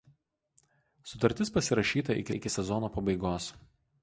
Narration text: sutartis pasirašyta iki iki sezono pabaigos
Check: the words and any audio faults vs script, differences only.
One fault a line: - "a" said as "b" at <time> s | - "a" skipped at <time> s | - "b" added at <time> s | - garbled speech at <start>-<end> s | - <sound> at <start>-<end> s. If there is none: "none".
none